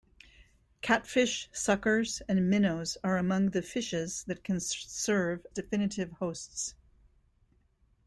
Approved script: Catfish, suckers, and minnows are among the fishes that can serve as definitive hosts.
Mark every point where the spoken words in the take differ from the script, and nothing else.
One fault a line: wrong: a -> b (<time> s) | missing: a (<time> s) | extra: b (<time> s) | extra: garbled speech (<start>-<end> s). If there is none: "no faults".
missing: as (5.5 s)